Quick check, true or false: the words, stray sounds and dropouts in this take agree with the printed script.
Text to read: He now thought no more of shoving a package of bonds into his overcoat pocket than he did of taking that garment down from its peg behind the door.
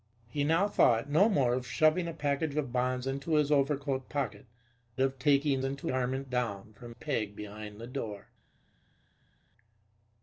false